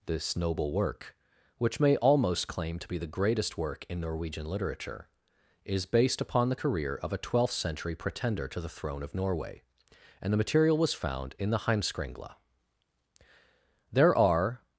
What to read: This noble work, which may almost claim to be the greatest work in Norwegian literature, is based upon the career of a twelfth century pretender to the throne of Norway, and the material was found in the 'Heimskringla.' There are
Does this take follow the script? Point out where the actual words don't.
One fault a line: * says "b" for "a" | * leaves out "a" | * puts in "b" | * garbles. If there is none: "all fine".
all fine